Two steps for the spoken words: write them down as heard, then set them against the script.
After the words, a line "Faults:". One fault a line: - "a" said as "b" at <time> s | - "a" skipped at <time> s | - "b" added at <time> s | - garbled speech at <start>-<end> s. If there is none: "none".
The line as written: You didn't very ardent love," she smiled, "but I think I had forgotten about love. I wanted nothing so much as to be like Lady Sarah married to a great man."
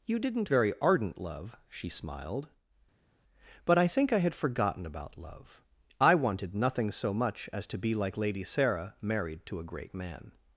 You didn't very ardent love," she smiled, "but I think I had forgotten about love. I wanted nothing so much as to be like Lady Sarah married to a great man."
Faults:
none